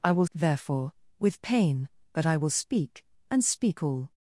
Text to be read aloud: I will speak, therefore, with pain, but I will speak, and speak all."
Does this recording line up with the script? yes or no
no